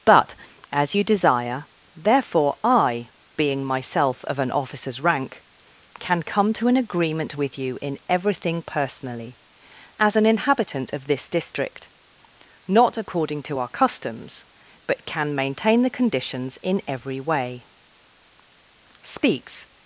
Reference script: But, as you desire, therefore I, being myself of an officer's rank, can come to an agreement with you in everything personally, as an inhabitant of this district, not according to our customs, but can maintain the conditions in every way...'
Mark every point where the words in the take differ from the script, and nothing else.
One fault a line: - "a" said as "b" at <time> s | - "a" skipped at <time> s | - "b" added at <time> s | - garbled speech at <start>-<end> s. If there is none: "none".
- "Speaks" added at 19.0 s